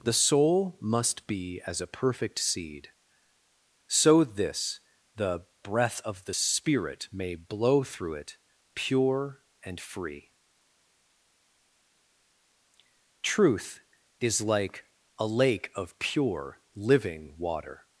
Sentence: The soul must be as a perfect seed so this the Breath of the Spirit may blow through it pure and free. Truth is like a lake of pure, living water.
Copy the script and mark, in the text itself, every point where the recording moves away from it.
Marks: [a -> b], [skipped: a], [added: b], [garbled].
The soul must be as a perfect seed so this the Breath of the Spirit may blow through it pure and free. Truth is like a lake of pure, living water.